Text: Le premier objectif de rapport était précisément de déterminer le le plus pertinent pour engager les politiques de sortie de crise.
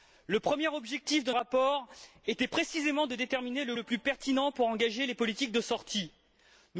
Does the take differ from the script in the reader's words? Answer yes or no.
no